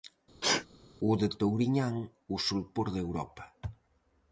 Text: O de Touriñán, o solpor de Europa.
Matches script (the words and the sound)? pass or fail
fail